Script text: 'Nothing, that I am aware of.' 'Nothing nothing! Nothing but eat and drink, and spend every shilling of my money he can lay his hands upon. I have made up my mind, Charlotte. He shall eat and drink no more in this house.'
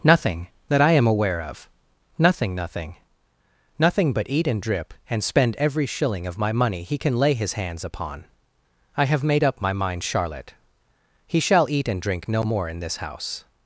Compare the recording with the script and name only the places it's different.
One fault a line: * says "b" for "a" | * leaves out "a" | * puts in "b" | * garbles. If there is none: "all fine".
* says "drip" for "drink"